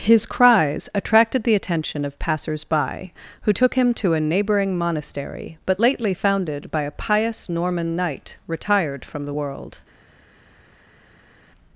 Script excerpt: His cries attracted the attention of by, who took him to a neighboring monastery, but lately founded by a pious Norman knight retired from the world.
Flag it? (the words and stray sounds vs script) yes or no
yes